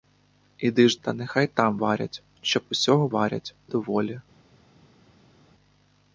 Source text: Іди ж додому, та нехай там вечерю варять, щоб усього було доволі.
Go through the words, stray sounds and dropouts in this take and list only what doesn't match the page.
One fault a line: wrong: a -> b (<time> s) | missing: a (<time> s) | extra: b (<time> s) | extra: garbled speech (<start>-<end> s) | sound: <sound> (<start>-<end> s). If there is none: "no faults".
missing: додому (1.0 s)
missing: вечерю (1.8 s)
wrong: було -> варять (3.1 s)